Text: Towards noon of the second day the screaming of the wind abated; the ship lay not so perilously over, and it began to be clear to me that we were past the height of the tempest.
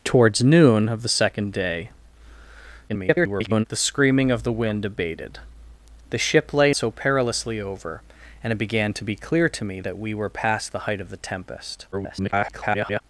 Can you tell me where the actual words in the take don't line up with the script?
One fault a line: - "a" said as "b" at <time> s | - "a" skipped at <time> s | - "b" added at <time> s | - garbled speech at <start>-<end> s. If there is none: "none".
- garbled speech at 2.9-3.7 s
- "not" skipped at 6.7 s
- garbled speech at 11.9-13.0 s